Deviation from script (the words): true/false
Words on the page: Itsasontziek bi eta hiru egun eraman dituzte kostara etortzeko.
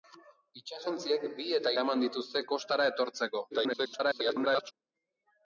true